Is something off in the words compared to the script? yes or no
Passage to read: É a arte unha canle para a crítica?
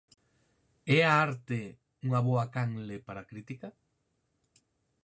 yes